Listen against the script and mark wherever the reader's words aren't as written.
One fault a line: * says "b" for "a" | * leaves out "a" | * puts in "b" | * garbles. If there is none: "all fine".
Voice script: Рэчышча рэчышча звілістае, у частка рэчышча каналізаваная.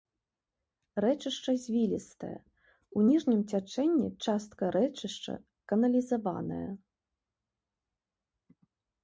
* leaves out "рэчышча"
* puts in "ніжнім цячэнні"